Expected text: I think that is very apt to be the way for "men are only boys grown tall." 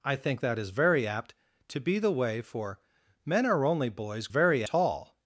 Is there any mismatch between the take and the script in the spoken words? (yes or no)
yes